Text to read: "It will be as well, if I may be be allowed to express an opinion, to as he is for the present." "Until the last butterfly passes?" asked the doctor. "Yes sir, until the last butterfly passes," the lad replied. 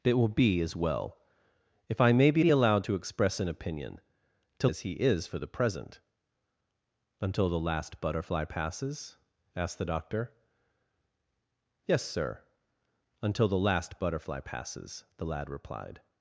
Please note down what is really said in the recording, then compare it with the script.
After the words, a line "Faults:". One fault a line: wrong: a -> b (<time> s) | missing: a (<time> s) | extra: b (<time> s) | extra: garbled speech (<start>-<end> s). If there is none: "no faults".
"It will be as well, if I may be be allowed to express an opinion, to as he is for the present." "Until the last butterfly passes?" asked the doctor. "Yes sir, until the last butterfly passes," the lad replied.
Faults:
no faults